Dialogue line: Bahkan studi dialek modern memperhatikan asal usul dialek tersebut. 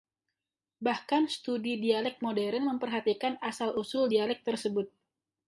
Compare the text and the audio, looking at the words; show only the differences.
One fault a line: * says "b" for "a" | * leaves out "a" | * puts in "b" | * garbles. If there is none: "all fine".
all fine